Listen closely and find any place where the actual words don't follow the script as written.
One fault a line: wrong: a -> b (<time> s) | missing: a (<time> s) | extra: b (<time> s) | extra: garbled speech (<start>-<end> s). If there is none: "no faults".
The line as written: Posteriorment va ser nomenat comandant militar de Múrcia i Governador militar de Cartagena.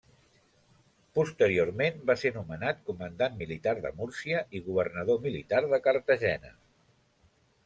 no faults